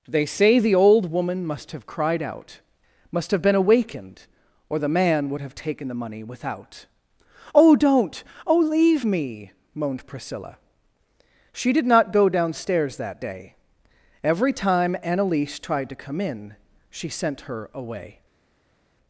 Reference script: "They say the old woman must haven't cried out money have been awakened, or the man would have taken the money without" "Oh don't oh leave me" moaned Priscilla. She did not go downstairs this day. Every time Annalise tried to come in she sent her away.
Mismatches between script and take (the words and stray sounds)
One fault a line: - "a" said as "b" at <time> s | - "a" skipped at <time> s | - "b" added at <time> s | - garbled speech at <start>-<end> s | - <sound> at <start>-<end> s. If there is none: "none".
- "haven't" said as "have" at 1.7 s
- "money" said as "must" at 3.1 s
- "this" said as "that" at 13.0 s